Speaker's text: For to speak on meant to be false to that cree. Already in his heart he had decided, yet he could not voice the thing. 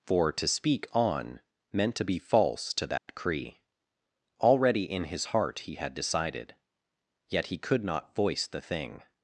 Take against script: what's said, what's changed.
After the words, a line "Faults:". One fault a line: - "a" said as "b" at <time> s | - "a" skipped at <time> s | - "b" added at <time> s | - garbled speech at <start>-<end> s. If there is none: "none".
For to speak on meant to be false to that cree. Already in his heart he had decided, yet he could not voice the thing.
Faults:
none